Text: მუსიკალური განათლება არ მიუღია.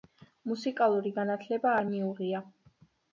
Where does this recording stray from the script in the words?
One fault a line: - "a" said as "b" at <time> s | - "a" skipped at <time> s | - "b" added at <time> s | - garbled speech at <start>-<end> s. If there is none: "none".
none